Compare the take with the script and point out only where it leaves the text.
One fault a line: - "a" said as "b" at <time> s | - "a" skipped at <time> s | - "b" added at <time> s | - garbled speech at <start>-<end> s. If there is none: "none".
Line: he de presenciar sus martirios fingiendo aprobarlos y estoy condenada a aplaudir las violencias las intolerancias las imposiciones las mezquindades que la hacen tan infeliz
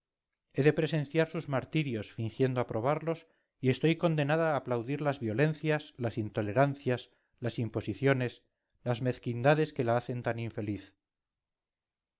none